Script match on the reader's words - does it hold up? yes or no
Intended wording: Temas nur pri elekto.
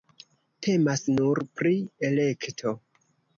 yes